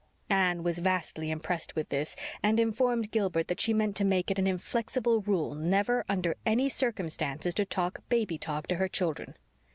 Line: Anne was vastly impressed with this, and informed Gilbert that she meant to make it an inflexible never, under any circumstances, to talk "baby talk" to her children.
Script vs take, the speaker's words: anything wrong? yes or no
yes